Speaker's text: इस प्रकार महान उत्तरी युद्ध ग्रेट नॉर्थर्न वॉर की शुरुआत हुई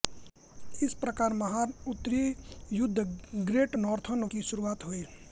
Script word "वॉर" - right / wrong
wrong